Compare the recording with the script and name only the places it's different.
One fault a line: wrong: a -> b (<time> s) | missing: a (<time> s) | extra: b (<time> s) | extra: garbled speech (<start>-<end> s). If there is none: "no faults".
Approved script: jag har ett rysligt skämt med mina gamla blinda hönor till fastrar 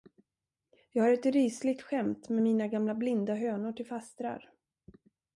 no faults